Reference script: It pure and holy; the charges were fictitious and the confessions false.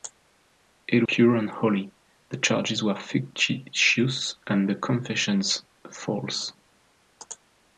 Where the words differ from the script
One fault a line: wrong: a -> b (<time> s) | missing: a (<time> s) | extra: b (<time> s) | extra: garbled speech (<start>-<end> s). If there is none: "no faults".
no faults